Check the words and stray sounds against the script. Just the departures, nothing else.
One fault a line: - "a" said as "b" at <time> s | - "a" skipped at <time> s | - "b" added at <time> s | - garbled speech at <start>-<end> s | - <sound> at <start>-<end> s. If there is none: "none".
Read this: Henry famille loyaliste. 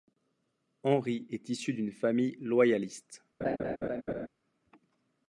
- "est issu d'une" added at 1.3 s
- laugh at 3.4-4.3 s